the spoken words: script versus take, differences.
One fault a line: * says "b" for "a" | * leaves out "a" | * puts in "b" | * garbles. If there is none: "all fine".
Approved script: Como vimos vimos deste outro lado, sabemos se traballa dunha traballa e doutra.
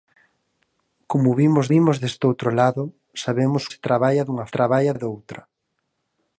all fine